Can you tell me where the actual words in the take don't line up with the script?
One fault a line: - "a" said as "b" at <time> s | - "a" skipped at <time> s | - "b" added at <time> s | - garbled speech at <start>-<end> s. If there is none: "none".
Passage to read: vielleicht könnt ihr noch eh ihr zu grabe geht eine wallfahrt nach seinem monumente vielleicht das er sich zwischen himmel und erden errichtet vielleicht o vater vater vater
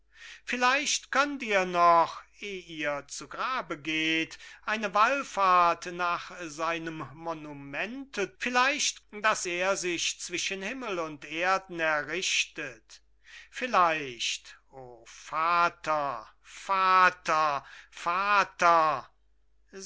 none